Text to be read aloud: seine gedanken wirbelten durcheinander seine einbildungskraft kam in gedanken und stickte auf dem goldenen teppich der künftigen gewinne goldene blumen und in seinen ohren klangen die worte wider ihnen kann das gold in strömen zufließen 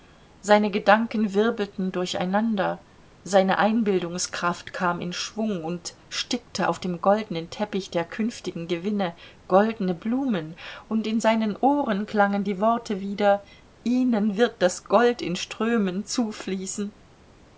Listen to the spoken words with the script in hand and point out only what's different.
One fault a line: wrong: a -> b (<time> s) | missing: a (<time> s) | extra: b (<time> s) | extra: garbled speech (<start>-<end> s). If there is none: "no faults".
wrong: gedanken -> schwung (5.1 s)
wrong: kann -> wird (14.4 s)